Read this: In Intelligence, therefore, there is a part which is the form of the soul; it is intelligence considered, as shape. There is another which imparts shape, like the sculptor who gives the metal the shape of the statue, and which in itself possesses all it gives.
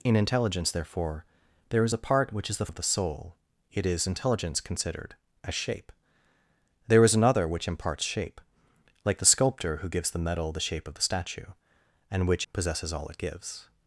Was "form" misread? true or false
true